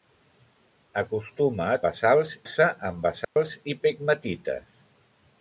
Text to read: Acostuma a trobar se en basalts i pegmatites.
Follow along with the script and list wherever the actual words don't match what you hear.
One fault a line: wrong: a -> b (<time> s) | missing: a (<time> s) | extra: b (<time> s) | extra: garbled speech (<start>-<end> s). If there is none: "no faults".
wrong: trobar -> basalts (1.9 s)